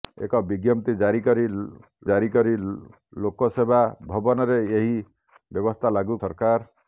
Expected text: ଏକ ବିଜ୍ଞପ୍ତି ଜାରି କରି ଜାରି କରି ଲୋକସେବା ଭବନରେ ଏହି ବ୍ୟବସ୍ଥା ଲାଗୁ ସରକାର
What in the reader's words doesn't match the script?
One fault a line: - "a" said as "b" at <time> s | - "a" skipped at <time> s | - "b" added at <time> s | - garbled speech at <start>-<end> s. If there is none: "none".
none